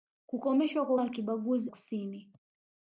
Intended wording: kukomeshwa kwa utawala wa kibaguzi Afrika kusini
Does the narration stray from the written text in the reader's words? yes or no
yes